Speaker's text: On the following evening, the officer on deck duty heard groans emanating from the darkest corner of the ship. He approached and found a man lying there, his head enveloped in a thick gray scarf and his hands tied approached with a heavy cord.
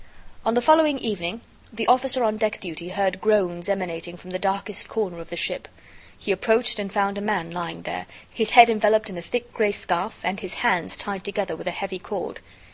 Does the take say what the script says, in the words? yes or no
no